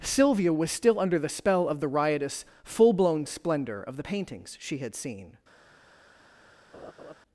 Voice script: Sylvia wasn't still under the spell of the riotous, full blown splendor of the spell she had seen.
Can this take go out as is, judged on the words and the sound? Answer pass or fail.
fail